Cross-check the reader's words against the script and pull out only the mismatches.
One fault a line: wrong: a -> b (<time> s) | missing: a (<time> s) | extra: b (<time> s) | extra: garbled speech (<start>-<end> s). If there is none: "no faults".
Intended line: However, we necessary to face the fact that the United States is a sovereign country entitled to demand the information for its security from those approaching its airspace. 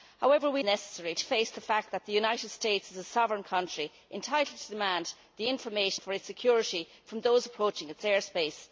no faults